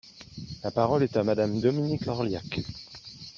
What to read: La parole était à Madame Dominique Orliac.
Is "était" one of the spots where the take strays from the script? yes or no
yes